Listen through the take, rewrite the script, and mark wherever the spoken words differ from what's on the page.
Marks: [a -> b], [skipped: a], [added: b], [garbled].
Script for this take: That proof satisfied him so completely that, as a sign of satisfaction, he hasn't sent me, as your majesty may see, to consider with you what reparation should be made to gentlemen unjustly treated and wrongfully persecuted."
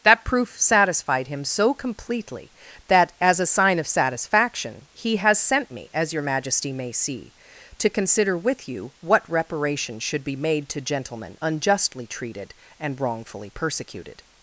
That proof satisfied him so completely that, as a sign of satisfaction, he [hasn't -> has] sent me, as your majesty may see, to consider with you what reparation should be made to gentlemen unjustly treated and wrongfully persecuted."